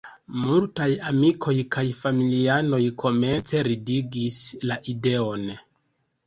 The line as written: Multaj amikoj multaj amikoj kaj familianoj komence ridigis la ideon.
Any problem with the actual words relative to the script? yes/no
yes